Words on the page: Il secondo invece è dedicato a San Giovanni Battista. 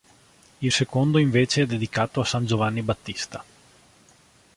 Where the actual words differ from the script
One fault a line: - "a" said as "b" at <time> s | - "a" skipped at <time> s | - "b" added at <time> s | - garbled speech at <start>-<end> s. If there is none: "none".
none